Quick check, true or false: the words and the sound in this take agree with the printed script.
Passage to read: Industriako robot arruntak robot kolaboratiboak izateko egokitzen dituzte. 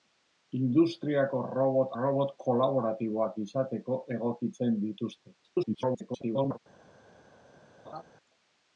false